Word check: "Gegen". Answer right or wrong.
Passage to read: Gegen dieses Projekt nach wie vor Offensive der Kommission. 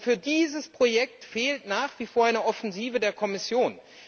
wrong